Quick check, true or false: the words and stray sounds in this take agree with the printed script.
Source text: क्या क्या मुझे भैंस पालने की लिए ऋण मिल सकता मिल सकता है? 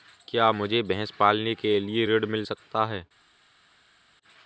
false